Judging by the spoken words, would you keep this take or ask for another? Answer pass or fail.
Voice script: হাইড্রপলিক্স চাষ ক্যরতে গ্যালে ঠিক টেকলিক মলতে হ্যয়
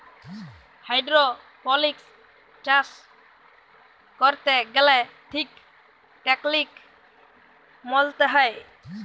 pass